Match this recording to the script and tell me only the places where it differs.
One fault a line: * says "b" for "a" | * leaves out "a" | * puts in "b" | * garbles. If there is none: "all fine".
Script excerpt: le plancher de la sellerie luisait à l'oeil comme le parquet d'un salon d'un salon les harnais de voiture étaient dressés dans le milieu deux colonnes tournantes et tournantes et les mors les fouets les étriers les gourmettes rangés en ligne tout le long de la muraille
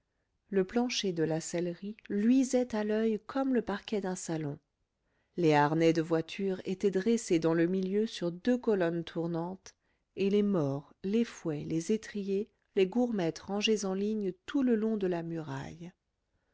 * leaves out "d'un salon"
* puts in "sur"
* leaves out "tournantes et"